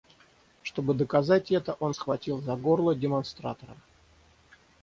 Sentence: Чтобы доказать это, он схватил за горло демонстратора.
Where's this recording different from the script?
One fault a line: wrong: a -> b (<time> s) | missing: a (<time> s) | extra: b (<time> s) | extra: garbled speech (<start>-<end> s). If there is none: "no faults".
no faults